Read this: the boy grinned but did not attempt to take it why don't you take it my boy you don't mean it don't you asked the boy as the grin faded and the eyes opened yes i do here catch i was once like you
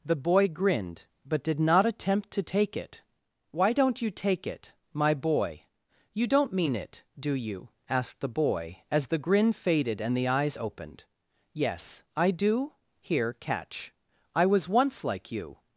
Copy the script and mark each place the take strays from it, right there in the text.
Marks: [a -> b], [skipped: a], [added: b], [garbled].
the boy grinned but did not attempt to take it why don't you take it my boy you don't mean it [don't -> do] you asked the boy as the grin faded and the eyes opened yes i do here catch i was once like you